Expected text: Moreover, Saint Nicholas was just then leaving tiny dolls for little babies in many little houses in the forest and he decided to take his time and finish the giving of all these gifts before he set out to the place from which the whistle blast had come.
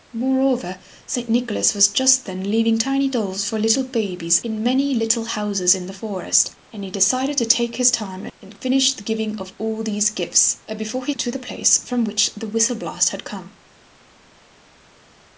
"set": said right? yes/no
no